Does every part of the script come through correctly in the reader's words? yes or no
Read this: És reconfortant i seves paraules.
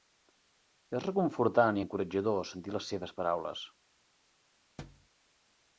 no